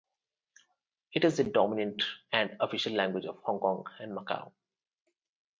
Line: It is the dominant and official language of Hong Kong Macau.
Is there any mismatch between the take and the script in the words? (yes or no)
yes